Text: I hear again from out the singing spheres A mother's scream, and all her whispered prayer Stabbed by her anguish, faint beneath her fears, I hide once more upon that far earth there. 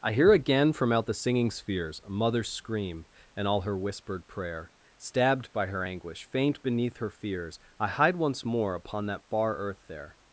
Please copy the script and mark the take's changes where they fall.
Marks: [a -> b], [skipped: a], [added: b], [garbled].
I hear again from out the singing spheres A mother's scream, and all her whispered prayer Stabbed by her anguish, faint beneath her fears, I hide once more upon that far earth there.